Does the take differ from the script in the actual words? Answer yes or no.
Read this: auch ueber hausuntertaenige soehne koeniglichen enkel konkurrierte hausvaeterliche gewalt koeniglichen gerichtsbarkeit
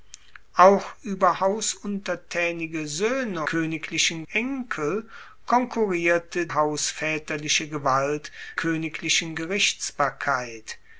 no